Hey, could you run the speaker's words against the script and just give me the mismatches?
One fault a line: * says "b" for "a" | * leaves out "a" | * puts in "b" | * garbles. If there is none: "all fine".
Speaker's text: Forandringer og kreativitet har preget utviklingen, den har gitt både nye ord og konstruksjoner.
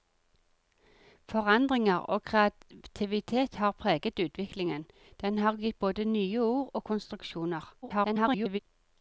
* garbles